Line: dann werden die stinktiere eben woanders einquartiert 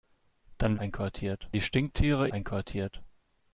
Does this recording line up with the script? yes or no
no